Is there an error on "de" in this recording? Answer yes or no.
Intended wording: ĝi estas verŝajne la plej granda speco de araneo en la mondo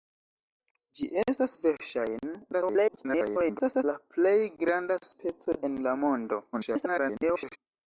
yes